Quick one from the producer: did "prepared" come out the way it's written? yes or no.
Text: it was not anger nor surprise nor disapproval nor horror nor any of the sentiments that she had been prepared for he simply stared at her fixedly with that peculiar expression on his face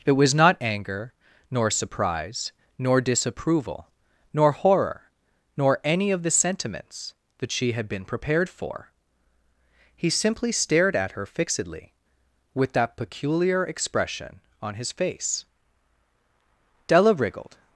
yes